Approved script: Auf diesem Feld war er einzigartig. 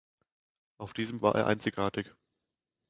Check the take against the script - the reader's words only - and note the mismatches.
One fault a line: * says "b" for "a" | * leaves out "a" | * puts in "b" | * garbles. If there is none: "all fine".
* leaves out "Feld"